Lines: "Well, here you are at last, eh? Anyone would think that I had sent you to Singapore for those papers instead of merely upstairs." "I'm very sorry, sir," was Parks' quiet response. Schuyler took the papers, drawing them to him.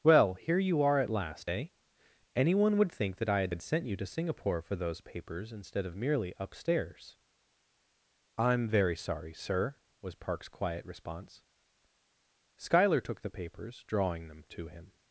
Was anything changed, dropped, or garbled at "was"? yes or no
no